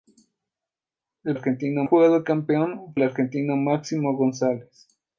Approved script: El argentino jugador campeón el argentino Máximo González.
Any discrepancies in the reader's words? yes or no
no